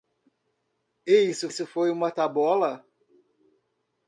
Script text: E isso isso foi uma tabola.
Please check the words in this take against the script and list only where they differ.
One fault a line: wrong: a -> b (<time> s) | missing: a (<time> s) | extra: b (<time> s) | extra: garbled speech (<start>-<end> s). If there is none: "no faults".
no faults